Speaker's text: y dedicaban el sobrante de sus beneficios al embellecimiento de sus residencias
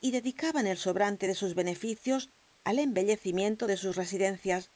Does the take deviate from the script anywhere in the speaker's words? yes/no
no